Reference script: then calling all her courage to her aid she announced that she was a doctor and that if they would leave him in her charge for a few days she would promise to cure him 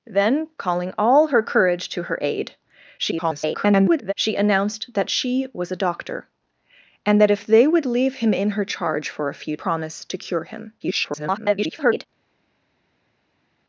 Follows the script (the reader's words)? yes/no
no